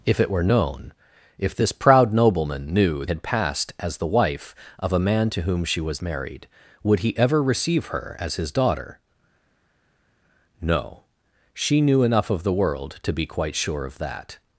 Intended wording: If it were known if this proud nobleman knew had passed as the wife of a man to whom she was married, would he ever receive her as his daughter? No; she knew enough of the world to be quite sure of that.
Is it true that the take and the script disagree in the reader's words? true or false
false